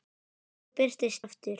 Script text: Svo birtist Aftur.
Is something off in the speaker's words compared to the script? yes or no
no